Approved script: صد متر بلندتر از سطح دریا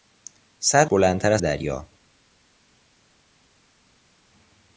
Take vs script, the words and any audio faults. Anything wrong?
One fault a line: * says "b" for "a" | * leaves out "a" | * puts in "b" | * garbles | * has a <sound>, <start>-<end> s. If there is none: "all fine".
* leaves out "متر"
* leaves out "سطح"